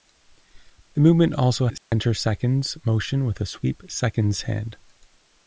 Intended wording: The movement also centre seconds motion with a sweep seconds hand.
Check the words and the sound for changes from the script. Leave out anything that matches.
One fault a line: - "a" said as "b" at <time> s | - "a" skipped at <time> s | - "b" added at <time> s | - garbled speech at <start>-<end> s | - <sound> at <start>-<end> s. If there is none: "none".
- dropout at 1.8-1.9 s